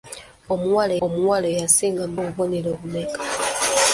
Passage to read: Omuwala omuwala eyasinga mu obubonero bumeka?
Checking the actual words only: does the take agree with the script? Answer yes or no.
yes